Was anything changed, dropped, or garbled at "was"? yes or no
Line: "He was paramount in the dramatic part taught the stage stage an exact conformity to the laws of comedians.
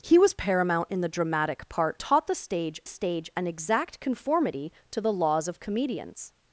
no